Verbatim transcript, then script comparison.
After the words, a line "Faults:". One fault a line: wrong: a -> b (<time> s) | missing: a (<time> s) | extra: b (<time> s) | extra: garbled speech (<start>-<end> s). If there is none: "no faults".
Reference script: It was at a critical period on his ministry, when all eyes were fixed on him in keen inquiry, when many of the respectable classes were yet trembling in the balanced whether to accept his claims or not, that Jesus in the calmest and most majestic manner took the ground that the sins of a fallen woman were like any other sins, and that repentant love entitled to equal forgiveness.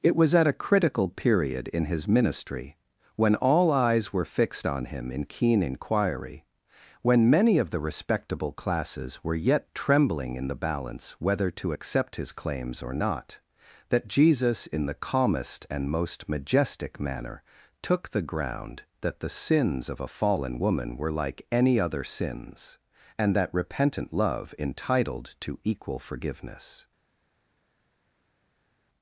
It was at a critical period in his ministry, when all eyes were fixed on him in keen inquiry, when many of the respectable classes were yet trembling in the balance whether to accept his claims or not, that Jesus in the calmest and most majestic manner took the ground that the sins of a fallen woman were like any other sins, and that repentant love entitled to equal forgiveness.
Faults:
wrong: on -> in (1.7 s)
wrong: balanced -> balance (10.6 s)